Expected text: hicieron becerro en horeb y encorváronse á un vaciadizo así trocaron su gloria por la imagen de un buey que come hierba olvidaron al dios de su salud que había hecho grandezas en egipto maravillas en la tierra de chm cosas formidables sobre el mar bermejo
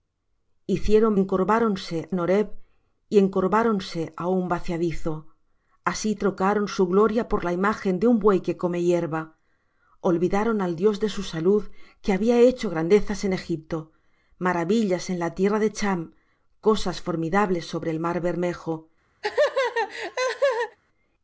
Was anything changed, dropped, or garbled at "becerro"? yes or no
yes